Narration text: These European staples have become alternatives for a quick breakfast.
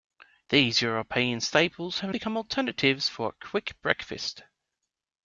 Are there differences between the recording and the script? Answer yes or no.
no